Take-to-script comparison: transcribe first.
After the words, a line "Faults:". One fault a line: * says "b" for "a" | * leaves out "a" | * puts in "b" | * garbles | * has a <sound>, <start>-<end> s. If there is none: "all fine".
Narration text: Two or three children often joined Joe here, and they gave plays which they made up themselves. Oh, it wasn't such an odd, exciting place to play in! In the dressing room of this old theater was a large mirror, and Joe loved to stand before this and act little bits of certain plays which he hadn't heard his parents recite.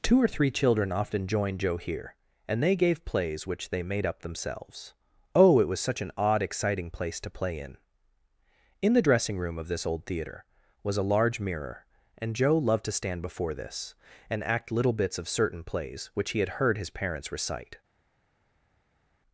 Two or three children often joined Joe here, and they gave plays which they made up themselves. Oh, it was such an odd, exciting place to play in! In the dressing room of this old theater was a large mirror, and Joe loved to stand before this and act little bits of certain plays which he had heard his parents recite.
Faults:
* says "was" for "wasn't"
* says "had" for "hadn't"